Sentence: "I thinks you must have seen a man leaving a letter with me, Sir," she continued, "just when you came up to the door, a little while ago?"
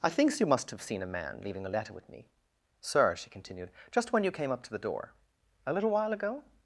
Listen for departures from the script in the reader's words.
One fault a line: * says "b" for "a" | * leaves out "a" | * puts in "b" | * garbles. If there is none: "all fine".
all fine